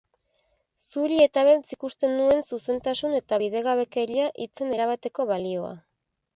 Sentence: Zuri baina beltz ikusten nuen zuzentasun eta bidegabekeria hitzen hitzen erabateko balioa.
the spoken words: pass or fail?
fail